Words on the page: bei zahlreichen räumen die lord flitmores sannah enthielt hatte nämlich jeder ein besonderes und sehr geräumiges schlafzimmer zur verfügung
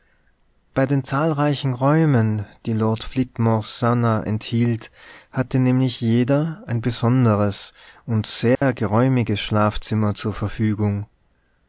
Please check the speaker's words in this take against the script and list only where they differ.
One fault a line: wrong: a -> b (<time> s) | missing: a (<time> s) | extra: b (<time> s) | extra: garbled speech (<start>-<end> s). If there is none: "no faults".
extra: den (0.9 s)